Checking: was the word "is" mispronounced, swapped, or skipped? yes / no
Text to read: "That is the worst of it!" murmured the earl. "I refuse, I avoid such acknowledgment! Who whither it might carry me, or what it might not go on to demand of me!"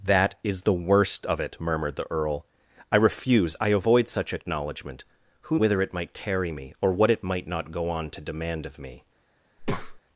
no